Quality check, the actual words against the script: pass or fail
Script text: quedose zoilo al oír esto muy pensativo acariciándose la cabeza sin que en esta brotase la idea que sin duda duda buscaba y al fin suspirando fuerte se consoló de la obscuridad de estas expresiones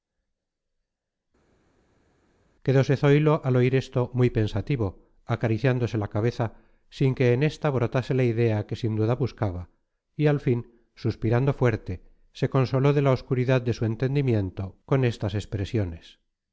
fail